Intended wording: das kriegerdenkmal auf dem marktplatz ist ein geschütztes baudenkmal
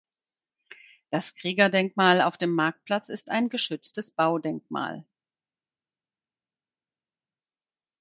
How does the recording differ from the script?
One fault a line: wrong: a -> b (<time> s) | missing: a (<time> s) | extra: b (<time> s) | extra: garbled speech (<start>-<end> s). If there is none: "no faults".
no faults